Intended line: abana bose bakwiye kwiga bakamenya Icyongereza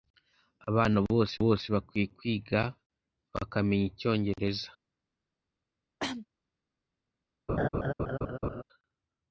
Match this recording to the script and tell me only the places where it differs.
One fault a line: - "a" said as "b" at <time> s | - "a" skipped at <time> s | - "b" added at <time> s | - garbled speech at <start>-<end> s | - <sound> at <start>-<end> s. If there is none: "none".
- "bose" added at 1.4 s
- cough at 6.0-6.3 s
- laugh at 7.5-8.6 s